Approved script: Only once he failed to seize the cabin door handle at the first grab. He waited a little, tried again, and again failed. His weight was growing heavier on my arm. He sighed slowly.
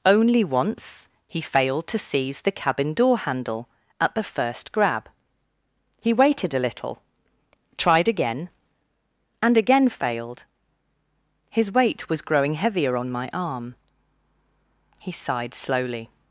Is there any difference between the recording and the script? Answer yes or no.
no